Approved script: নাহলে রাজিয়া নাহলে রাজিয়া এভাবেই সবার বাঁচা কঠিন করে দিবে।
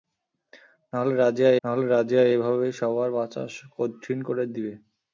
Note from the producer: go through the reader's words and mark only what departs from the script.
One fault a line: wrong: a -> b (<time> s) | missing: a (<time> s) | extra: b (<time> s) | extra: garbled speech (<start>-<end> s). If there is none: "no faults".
no faults